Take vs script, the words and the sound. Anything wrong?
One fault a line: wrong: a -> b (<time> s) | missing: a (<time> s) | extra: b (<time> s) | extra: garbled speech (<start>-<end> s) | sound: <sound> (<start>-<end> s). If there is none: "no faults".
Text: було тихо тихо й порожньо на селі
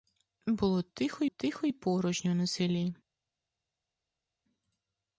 no faults